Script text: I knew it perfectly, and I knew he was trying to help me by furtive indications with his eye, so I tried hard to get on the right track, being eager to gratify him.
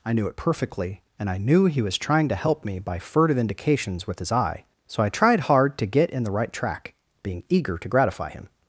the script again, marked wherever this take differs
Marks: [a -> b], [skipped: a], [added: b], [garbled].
I knew it perfectly, and I knew he was trying to help me by furtive indications with his eye, so I tried hard to get [on -> in] the right track, being eager to gratify him.